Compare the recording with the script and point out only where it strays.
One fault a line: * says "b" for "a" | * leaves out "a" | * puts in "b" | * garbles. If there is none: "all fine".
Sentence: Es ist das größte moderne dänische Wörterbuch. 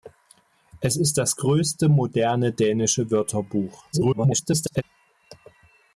* garbles